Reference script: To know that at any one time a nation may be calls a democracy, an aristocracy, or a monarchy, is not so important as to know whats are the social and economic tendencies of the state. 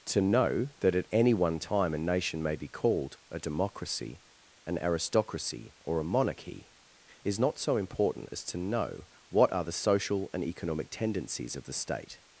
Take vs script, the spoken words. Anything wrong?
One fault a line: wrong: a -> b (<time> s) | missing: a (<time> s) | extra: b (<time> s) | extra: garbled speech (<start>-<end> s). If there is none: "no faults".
wrong: calls -> called (2.7 s)
wrong: whats -> what (9.3 s)